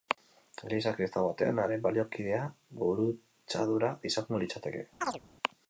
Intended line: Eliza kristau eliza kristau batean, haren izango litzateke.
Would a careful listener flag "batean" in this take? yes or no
yes